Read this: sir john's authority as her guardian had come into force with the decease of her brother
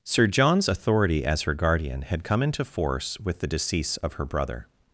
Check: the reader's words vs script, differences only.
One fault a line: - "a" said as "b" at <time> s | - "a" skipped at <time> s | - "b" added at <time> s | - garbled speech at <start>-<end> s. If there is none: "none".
none